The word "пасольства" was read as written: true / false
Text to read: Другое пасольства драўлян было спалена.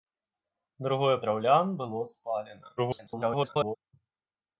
false